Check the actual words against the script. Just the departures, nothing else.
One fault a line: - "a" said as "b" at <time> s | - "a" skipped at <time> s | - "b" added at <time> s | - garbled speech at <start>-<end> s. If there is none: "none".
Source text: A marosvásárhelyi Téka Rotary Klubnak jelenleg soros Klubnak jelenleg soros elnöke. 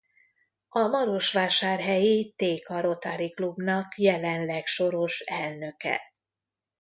- "Klubnak jelenleg soros" skipped at 5.2 s